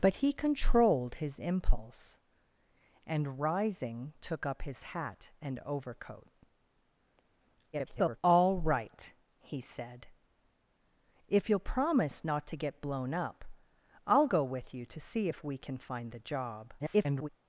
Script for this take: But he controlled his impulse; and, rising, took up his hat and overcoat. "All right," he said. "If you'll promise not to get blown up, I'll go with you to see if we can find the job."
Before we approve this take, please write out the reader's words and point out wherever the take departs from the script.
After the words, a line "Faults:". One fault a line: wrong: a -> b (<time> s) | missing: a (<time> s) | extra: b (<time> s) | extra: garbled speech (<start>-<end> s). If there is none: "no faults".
But he controlled his impulse; and, rising, took up his hat and overcoat. [garbled] "All right," he said. "If you'll promise not to get blown up, I'll go with you to see if we can find the job." [garbled]
Faults:
extra: garbled speech (7.7-8.2 s)
extra: garbled speech (16.8-17.3 s)